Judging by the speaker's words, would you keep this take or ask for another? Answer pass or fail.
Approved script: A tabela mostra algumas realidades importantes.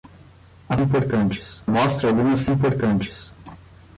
fail